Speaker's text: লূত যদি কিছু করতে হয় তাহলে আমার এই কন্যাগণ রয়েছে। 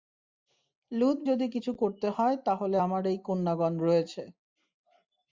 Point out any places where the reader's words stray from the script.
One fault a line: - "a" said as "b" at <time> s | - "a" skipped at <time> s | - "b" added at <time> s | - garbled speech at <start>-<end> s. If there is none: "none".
none